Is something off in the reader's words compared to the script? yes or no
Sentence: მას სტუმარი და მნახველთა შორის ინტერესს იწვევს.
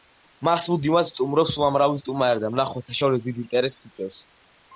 yes